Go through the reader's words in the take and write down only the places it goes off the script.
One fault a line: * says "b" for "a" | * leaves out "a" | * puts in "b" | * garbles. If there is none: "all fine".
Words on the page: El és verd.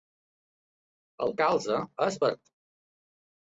* puts in "calze"